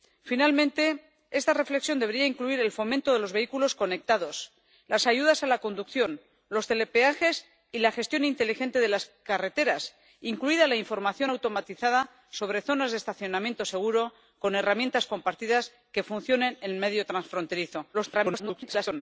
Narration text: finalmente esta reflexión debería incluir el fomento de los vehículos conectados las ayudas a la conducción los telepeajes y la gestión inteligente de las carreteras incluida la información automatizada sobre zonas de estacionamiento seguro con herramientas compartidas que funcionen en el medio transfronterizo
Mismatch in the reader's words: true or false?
true